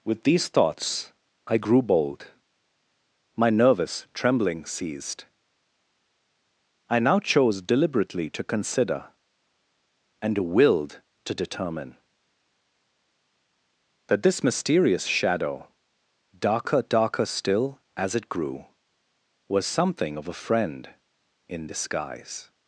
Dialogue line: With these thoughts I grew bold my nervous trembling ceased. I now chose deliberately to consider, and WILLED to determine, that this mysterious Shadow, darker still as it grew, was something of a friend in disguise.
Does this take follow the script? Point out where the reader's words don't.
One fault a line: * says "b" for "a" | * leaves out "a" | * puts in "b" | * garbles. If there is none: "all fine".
* puts in "darker"